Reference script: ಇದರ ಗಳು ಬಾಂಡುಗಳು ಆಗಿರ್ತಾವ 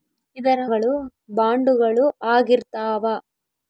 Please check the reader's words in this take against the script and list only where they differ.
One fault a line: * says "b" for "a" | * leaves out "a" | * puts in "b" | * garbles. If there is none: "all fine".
all fine